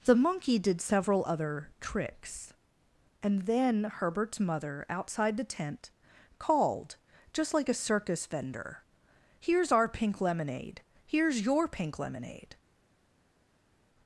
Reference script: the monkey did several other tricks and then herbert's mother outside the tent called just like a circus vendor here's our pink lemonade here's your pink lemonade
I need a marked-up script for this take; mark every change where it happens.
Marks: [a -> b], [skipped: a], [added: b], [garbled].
the monkey did several other tricks and then herbert's mother outside the tent called just like a circus vendor here's our pink lemonade here's your pink lemonade